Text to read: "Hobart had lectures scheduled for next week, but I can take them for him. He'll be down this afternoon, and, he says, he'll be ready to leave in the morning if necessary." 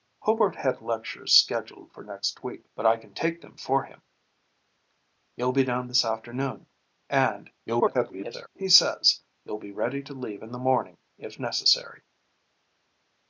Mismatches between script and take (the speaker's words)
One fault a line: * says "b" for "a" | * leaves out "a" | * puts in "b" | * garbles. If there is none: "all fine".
* garbles